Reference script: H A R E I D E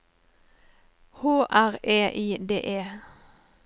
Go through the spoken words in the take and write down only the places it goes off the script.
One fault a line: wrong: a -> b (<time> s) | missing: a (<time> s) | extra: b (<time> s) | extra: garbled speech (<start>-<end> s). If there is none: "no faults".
missing: A (1.2 s)